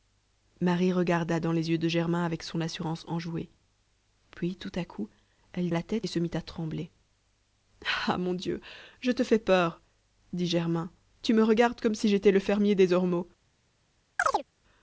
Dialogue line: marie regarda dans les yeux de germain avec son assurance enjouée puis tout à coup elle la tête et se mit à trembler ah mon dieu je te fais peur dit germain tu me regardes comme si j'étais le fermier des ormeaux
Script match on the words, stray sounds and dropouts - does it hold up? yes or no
no